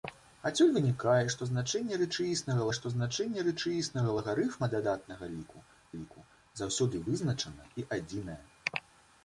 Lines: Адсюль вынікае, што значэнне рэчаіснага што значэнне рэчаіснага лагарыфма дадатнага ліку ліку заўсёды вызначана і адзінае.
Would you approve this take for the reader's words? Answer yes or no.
yes